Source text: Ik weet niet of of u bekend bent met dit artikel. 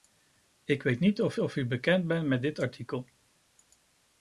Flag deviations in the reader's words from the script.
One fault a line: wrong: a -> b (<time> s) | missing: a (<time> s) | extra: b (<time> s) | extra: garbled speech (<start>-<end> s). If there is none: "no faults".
no faults